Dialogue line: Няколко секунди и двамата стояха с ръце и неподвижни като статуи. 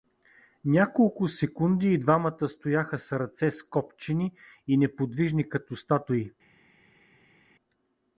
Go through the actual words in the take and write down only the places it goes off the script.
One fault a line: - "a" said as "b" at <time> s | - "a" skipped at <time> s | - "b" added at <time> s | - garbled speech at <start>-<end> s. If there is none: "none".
- "скопчени" added at 3.5 s